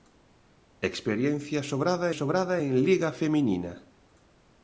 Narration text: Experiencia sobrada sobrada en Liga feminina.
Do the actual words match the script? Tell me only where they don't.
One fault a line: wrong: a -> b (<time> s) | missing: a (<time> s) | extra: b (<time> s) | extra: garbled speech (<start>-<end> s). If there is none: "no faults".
no faults